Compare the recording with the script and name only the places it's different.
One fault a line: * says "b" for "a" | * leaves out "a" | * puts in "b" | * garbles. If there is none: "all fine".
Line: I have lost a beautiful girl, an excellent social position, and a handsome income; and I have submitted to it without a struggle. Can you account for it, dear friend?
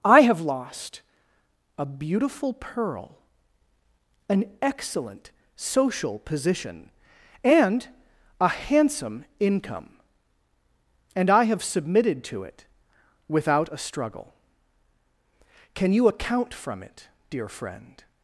* says "pearl" for "girl"
* says "from" for "for"